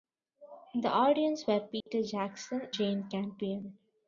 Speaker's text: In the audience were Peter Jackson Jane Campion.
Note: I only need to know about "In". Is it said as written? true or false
true